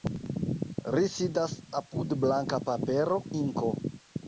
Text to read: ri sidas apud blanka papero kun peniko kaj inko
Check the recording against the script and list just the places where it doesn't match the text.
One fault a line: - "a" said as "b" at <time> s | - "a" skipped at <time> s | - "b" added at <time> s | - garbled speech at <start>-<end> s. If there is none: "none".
- "kun peniko kaj" skipped at 3.2 s